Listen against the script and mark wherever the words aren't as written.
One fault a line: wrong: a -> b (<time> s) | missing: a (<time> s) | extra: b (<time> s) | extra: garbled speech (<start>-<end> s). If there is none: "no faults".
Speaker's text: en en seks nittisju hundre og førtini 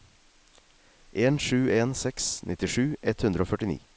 extra: sju (1.4 s)
extra: ett (3.0 s)